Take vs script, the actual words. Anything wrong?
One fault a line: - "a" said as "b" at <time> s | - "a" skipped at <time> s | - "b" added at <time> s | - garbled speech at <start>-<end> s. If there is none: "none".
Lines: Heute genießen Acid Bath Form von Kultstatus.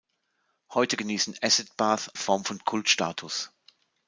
none